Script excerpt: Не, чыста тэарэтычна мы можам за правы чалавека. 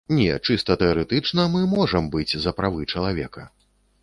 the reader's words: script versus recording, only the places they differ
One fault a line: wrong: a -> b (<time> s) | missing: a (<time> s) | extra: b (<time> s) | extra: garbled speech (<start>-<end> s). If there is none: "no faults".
extra: быць (2.1 s)